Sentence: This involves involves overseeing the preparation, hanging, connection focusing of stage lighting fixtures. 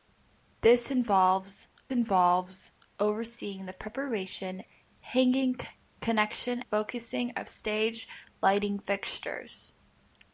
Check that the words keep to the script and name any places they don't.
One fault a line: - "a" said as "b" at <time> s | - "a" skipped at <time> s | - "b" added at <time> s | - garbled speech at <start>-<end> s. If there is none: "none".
none